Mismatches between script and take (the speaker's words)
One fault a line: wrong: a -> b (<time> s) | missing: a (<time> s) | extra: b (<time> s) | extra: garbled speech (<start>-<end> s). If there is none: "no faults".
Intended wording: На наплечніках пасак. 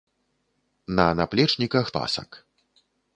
no faults